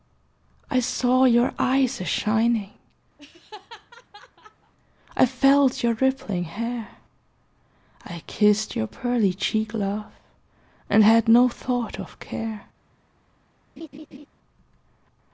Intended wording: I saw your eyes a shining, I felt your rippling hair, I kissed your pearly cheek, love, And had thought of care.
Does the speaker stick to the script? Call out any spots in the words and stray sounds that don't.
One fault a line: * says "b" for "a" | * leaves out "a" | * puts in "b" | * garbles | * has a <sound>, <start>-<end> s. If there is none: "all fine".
* has a laugh, 3.2-4.7 s
* puts in "no"
* has a laugh, 13.8-14.3 s